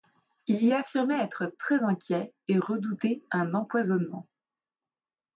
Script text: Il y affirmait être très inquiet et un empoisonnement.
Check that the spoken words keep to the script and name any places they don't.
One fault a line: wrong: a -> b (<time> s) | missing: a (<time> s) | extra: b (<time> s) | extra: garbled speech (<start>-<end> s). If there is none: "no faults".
extra: redouter (2.6 s)